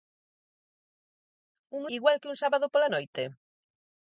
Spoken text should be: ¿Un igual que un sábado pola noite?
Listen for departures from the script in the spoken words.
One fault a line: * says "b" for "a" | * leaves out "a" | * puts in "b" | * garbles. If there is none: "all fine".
all fine